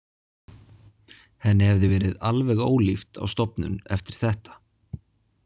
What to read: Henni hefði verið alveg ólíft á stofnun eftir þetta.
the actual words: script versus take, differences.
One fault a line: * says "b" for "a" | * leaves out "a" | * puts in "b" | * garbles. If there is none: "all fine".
all fine